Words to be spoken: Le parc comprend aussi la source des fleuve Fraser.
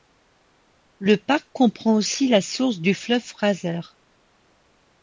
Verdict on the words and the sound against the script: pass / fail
fail